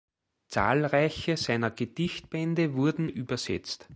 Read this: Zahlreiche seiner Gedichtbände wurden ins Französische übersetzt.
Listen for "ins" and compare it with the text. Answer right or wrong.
wrong